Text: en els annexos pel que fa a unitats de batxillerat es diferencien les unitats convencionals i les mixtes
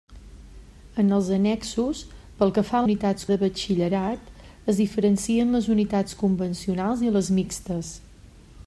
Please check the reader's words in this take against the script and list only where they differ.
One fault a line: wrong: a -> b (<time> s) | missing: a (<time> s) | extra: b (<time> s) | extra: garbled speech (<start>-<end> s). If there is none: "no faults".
no faults